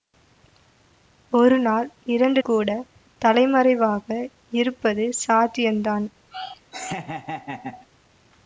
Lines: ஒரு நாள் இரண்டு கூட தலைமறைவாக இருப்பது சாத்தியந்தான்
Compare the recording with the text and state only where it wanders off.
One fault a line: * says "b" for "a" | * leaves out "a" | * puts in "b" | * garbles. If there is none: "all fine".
all fine